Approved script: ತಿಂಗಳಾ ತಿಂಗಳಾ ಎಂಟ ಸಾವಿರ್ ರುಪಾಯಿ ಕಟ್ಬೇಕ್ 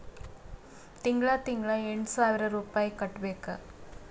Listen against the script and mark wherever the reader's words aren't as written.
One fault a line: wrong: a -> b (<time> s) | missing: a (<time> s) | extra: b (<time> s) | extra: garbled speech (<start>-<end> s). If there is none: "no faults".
no faults